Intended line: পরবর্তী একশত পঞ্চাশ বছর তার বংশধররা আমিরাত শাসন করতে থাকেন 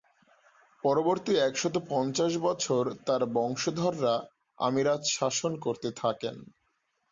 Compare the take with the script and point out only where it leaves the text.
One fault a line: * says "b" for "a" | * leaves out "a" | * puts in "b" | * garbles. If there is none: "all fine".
all fine